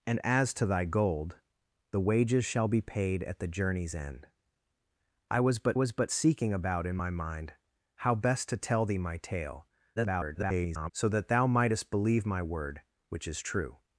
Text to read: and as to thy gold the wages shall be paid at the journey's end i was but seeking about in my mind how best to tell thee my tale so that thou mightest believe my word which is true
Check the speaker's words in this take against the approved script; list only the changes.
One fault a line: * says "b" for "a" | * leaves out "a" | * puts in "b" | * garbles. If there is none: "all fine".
* puts in "was but"
* garbles